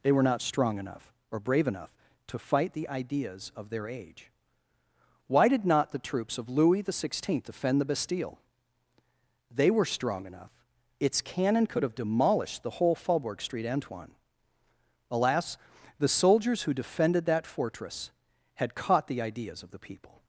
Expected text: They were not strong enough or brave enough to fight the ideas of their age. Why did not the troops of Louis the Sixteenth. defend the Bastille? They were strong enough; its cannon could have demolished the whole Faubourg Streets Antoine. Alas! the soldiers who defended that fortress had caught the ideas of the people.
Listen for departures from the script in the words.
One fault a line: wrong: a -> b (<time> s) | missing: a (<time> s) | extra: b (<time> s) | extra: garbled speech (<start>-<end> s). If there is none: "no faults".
wrong: Streets -> Street (13.4 s)